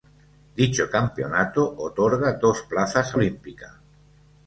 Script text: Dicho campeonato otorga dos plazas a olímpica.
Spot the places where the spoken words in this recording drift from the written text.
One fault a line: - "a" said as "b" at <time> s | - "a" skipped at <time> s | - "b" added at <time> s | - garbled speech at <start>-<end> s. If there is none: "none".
none